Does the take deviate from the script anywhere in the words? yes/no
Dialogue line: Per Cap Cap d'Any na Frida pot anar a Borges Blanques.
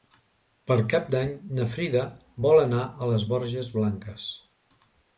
yes